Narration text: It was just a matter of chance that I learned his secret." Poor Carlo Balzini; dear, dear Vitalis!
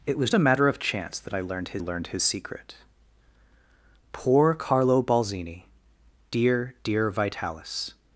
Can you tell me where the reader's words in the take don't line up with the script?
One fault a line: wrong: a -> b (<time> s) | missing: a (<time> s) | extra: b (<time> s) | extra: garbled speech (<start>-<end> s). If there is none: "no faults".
missing: just (0.3 s)
extra: learned his (1.8 s)